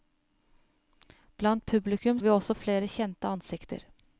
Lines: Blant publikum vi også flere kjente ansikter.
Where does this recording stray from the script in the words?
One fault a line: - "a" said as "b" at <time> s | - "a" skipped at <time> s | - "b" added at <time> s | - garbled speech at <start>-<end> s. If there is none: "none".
none